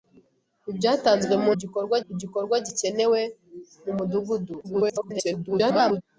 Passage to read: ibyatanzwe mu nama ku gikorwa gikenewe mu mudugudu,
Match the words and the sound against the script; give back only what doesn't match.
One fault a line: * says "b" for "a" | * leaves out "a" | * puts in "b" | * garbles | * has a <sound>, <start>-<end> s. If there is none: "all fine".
* says "gikorwa" for "nama"
* garbles